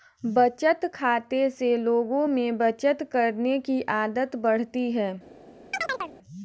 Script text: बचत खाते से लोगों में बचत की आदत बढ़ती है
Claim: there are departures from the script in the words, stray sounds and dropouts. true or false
true